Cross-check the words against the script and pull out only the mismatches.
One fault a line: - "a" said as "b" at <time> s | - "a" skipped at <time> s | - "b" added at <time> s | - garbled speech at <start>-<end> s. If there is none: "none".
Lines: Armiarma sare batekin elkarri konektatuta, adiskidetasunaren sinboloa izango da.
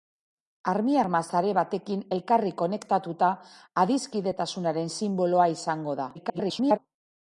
- garbled speech at 6.1-6.8 s